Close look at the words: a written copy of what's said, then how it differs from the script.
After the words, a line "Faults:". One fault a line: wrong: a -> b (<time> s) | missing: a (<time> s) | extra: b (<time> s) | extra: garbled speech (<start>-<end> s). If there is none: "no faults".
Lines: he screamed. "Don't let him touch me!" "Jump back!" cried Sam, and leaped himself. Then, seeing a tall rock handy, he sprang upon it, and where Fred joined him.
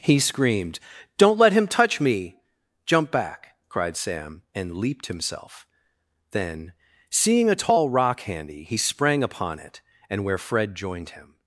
he screamed. "Don't let him touch me!" "Jump back!" cried Sam, and leaped himself. Then, seeing a tall rock handy, he sprang upon it, and where Fred joined him.
Faults:
no faults